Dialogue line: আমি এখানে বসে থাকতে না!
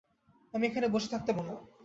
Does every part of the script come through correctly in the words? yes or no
yes